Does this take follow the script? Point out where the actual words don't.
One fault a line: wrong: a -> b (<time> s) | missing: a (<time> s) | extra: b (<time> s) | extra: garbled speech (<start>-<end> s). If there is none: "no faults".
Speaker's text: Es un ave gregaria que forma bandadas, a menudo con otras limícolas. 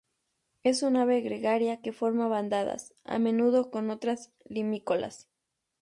no faults